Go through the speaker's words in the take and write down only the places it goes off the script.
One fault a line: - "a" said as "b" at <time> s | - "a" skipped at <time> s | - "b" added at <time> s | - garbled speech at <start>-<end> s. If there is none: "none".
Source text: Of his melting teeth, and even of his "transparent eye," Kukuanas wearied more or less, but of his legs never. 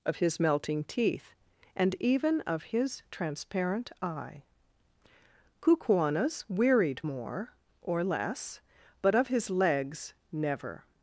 none